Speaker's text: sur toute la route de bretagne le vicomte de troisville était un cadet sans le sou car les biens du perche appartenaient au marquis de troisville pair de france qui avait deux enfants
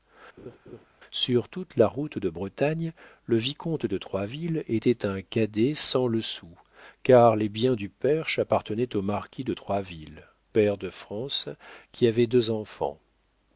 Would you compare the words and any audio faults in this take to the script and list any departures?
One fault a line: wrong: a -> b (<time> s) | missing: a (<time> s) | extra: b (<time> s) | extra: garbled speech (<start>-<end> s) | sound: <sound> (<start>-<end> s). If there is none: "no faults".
sound: laugh (0.4-0.9 s)